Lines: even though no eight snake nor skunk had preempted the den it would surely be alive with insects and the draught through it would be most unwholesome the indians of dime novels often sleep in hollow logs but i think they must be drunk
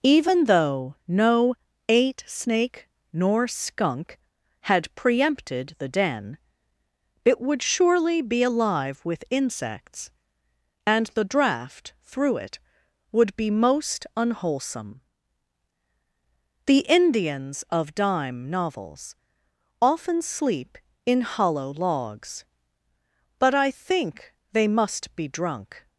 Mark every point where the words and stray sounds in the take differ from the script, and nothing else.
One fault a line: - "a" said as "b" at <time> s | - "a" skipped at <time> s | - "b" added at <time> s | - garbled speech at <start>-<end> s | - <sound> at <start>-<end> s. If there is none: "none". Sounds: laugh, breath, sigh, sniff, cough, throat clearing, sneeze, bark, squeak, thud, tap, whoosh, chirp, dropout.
none